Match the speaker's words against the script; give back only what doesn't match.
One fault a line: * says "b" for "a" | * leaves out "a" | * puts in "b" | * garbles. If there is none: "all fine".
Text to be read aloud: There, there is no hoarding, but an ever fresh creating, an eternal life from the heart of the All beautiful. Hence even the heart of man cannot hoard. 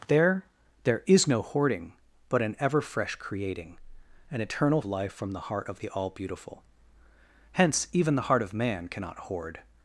all fine